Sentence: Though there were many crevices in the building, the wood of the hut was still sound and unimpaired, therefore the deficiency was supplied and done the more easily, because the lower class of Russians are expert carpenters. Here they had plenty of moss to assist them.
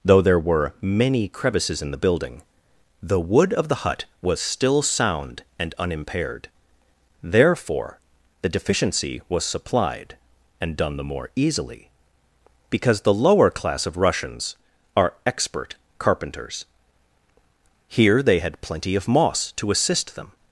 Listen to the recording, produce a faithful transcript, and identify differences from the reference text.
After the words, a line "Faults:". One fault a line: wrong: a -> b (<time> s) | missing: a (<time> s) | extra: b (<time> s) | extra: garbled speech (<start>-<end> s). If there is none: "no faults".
Though there were many crevices in the building, the wood of the hut was still sound and unimpaired, therefore the deficiency was supplied and done the more easily, because the lower class of Russians are expert carpenters. Here they had plenty of moss to assist them.
Faults:
no faults